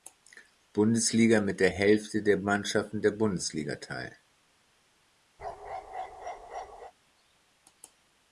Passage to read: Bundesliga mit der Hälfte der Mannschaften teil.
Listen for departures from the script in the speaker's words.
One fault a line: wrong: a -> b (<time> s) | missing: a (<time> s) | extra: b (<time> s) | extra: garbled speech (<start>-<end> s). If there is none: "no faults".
extra: der Bundesliga (3.0 s)